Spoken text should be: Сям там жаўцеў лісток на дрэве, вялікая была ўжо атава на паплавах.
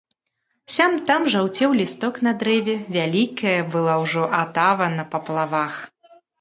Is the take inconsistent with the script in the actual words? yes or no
no